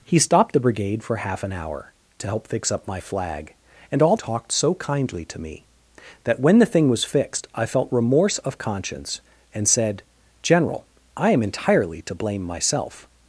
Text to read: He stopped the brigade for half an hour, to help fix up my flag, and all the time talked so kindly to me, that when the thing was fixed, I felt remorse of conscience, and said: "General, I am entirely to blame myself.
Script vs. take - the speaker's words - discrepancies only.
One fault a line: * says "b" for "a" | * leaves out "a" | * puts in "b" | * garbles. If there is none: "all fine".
* leaves out "the time"